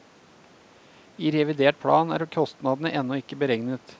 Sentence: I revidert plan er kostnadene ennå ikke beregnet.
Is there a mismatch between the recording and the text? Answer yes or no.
no